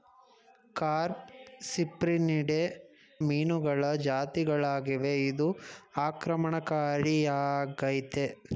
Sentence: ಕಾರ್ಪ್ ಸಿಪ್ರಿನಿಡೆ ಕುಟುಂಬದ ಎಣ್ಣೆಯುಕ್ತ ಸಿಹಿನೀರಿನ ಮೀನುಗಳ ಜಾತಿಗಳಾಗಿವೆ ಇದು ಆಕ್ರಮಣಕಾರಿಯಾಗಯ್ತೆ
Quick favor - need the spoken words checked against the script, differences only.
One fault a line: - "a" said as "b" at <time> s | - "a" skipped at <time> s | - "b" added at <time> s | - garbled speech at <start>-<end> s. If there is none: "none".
- "ಕುಟುಂಬದ ಎಣ್ಣೆಯುಕ್ತ ಸಿಹಿನೀರಿನ" skipped at 2.6 s